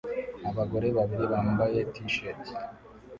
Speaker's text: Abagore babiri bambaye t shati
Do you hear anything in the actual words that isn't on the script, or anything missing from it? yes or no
no